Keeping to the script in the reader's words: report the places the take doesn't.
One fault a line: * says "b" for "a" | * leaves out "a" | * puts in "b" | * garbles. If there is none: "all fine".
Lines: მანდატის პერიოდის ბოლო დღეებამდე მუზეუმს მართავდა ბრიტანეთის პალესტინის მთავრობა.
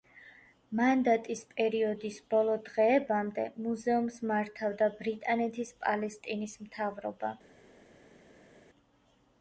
all fine